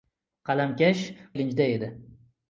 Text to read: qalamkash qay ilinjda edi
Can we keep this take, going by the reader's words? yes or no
no